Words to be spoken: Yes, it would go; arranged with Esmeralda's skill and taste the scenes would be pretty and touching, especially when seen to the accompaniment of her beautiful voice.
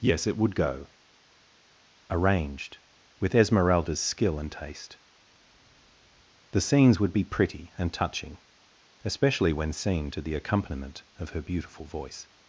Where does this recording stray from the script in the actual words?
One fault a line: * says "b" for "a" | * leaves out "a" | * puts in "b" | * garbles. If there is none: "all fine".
all fine